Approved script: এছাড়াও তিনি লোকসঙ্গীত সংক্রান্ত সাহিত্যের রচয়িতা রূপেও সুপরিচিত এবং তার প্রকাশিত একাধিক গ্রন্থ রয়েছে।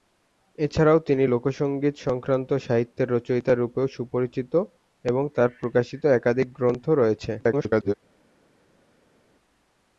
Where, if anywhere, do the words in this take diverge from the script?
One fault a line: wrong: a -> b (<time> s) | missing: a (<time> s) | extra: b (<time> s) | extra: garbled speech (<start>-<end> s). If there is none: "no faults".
extra: garbled speech (7.4-7.9 s)